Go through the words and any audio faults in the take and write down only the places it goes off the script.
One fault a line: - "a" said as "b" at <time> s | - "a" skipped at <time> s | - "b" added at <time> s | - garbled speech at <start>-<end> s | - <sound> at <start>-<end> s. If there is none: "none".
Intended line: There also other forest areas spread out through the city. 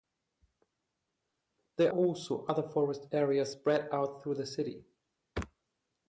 none